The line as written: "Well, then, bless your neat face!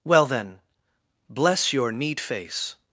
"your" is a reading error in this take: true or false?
false